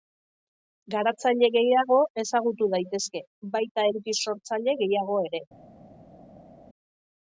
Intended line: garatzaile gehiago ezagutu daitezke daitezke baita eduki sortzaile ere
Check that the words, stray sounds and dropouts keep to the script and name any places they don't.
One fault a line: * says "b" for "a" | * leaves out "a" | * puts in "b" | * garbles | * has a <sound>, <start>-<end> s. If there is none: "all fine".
* leaves out "daitezke"
* puts in "gehiago"